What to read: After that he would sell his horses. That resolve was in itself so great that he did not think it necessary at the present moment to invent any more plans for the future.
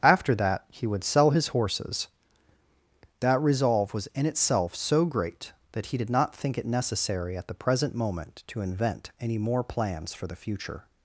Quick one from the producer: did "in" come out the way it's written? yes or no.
yes